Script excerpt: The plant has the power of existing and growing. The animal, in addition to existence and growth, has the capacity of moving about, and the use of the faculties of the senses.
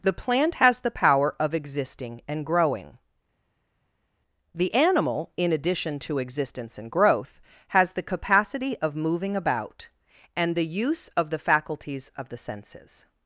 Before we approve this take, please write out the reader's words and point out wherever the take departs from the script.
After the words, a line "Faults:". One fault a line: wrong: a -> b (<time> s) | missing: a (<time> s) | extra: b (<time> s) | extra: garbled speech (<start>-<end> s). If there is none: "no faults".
The plant has the power of existing and growing. The animal, in addition to existence and growth, has the capacity of moving about, and the use of the faculties of the senses.
Faults:
no faults